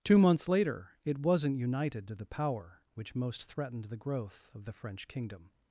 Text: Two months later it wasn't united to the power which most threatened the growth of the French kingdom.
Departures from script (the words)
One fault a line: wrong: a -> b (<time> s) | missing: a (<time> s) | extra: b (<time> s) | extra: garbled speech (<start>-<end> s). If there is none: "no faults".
no faults